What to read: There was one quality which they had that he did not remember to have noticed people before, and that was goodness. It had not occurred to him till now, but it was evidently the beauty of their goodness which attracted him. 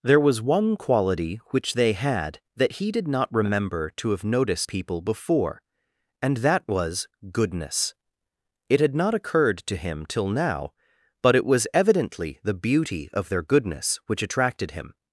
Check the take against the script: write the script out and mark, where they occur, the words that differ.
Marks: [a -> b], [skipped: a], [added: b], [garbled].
There was one quality which they had that he did not remember to have noticed people before, and that was goodness. It had not occurred to him till now, but it was evidently the beauty of their goodness which attracted him.